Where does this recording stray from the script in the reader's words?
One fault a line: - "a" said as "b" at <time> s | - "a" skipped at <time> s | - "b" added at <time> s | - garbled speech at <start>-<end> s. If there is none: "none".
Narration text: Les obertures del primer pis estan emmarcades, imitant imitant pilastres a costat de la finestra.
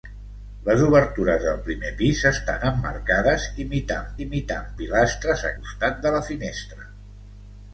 none